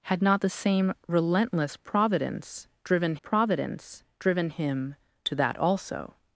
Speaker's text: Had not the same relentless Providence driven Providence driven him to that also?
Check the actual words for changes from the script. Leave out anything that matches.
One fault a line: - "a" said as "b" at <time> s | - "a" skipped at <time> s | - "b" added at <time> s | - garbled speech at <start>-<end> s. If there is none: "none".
none